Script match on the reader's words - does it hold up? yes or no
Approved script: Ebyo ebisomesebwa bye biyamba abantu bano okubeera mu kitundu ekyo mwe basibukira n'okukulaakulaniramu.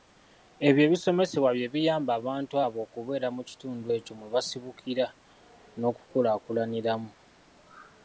no